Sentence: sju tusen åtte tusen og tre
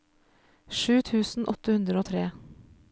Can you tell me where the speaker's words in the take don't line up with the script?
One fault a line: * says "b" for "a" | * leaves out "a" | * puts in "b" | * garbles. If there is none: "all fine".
* says "hundre" for "tusen"